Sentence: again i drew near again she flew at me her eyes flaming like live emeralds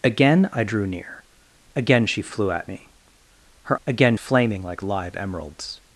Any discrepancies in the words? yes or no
yes